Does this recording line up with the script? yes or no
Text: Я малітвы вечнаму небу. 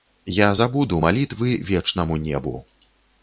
no